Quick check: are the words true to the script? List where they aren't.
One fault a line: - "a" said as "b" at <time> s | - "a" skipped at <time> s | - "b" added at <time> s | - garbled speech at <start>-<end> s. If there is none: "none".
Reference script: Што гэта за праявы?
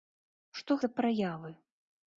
- "гэта" skipped at 0.8 s